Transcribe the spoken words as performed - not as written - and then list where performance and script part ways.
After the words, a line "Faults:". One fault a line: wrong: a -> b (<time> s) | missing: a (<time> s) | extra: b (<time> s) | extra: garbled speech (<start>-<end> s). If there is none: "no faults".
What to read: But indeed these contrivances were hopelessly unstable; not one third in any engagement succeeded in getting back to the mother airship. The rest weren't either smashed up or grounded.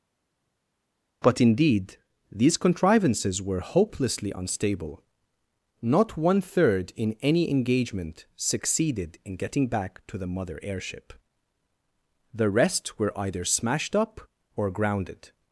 But indeed these contrivances were hopelessly unstable; not one third in any engagement succeeded in getting back to the mother airship. The rest were either smashed up or grounded.
Faults:
wrong: weren't -> were (13.0 s)